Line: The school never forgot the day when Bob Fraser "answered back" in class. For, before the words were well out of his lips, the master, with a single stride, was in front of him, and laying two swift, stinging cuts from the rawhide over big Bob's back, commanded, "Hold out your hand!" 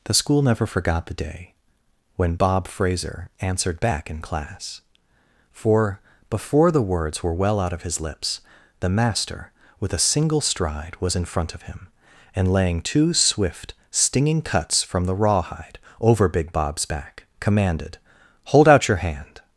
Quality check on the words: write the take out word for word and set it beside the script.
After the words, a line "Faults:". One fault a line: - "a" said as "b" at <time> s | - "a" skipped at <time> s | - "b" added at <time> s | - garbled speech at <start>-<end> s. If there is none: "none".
The school never forgot the day when Bob Fraser "answered back" in class. For, before the words were well out of his lips, the master, with a single stride, was in front of him, and laying two swift, stinging cuts from the rawhide over big Bob's back, commanded, "Hold out your hand!"
Faults:
none